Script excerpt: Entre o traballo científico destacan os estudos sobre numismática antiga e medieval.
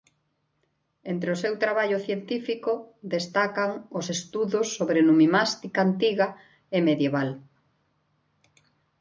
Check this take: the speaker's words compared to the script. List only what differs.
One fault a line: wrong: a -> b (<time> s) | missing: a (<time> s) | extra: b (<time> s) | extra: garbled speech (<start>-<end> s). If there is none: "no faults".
extra: seu (1.4 s)